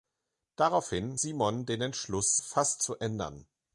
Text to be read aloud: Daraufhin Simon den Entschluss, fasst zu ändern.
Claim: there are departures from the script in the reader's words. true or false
false